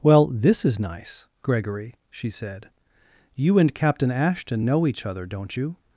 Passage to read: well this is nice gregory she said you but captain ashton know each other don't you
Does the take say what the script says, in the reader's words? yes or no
no